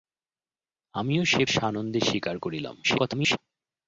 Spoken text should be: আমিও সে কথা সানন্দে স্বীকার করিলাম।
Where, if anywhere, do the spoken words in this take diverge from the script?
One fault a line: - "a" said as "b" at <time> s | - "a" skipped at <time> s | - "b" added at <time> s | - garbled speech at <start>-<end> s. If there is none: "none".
- "কথা" skipped at 1.4 s
- garbled speech at 2.8-3.4 s